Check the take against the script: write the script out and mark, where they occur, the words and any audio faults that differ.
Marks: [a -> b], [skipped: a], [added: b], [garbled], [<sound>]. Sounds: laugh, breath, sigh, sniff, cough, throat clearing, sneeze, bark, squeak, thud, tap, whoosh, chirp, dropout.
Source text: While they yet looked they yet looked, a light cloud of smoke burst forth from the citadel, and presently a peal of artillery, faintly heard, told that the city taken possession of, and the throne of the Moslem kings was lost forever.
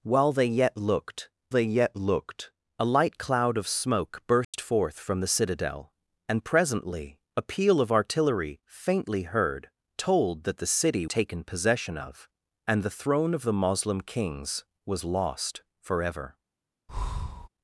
While they yet looked they yet looked, a light cloud of smoke burst [dropout] forth from the citadel, and presently a peal of artillery, faintly heard, told that the city taken possession of, and the throne of the Moslem kings was lost forever. [breath]